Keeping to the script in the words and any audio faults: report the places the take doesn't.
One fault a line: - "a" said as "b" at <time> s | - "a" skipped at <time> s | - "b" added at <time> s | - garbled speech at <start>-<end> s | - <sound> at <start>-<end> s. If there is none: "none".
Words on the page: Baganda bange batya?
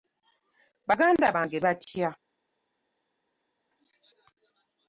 none